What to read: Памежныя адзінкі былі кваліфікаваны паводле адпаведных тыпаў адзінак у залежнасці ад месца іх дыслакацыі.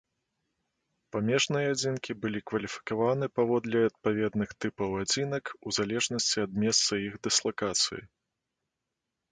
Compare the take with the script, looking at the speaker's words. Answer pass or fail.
pass